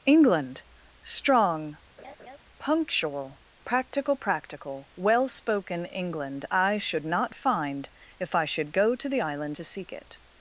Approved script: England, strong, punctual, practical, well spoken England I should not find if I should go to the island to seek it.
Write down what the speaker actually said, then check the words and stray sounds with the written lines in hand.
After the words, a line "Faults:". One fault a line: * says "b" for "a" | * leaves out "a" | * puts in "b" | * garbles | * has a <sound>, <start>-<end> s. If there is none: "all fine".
England, strong, punctual, practical practical, well spoken England I should not find if I should go to the island to seek it.
Faults:
* has a laugh, 2.0-2.4 s
* puts in "practical"